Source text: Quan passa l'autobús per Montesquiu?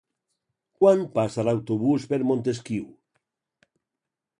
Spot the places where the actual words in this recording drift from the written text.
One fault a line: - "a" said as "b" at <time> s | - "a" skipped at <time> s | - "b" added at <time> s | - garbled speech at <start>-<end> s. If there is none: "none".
none